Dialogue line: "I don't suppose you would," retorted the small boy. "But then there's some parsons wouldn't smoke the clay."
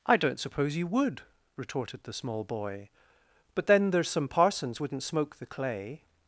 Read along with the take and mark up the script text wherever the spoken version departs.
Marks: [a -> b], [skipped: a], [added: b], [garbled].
"I don't suppose you would," retorted the small boy. "But then there's some parsons wouldn't smoke the clay."